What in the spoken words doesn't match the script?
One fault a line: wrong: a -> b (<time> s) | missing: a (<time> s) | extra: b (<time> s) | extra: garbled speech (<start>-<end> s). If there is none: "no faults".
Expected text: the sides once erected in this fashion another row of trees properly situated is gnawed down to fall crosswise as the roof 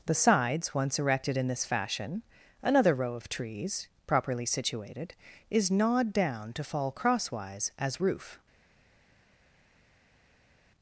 missing: the (8.0 s)